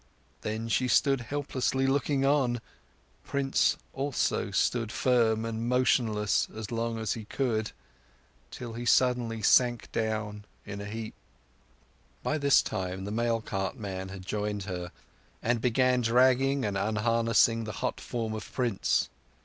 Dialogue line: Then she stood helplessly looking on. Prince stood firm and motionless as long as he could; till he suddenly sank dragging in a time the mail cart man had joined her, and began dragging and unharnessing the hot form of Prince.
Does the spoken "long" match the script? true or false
true